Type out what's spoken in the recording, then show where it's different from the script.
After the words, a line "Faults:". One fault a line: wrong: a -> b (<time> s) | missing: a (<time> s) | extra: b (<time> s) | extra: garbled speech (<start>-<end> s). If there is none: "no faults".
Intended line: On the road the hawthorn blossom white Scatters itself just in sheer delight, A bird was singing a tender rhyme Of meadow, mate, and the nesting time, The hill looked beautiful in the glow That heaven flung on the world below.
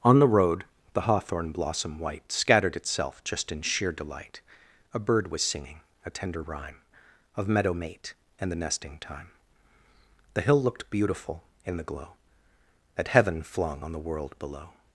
On the road the hawthorn blossom white Scattered itself just in sheer delight, A bird was singing a tender rhyme Of meadow, mate, and the nesting time, The hill looked beautiful in the glow That heaven flung on the world below.
Faults:
wrong: Scatters -> Scattered (2.3 s)